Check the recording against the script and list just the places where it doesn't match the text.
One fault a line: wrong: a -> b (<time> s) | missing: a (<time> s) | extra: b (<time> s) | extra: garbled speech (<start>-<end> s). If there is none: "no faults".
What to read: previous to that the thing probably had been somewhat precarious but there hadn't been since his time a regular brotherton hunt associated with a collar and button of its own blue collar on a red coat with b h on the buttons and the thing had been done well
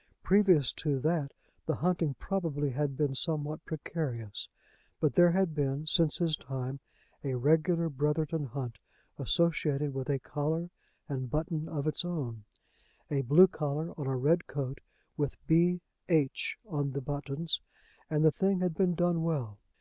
wrong: thing -> hunting (1.7 s)
wrong: hadn't -> had (5.3 s)
extra: a (13.1 s)